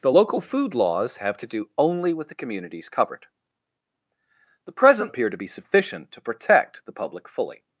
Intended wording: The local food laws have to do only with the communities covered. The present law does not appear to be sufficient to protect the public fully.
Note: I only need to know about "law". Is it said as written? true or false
false